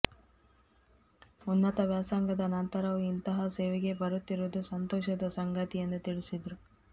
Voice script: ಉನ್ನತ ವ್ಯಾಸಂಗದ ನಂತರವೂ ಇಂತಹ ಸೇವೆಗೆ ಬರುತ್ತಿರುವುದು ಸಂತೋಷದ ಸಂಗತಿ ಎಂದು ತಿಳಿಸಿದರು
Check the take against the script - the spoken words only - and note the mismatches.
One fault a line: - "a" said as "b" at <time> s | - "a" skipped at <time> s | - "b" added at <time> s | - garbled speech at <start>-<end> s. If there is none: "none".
none